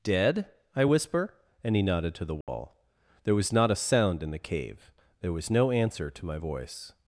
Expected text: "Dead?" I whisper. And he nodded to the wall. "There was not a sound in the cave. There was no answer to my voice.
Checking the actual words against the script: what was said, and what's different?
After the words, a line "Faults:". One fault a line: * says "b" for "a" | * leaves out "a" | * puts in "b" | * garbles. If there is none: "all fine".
"Dead?" I whisper. And he nodded to the wall. "There was not a sound in the cave. There was no answer to my voice.
Faults:
all fine